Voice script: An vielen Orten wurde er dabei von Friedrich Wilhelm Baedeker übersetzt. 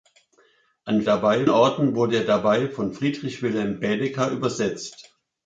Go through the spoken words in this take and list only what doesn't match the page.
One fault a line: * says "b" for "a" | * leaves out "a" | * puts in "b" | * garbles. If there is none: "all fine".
* says "dabei" for "vielen"